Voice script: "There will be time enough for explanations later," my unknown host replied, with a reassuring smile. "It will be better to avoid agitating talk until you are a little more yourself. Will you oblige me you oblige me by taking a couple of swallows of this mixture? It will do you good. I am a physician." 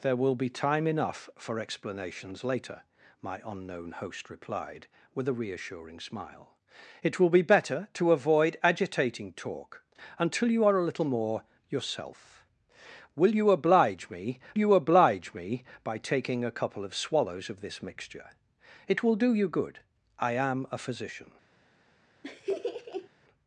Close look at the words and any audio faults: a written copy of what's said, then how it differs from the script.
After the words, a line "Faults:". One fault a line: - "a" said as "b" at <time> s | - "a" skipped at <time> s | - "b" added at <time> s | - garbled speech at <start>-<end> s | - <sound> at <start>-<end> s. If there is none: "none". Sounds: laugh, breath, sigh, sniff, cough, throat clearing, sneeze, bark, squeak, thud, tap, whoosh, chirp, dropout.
"There will be time enough for explanations later," my unknown host replied, with a reassuring smile. "It will be better to avoid agitating talk until you are a little more yourself. Will you oblige me you oblige me by taking a couple of swallows of this mixture? It will do you good. I am a physician."
Faults:
- laugh at 22.2-23.1 s